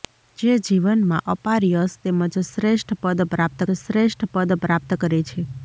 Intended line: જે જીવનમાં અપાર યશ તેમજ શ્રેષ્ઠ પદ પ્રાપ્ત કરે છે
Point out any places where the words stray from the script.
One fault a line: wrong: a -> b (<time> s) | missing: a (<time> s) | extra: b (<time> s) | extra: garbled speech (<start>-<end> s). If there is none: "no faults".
extra: શ્રેષ્ઠ પદ પ્રાપ્ત (3.8 s)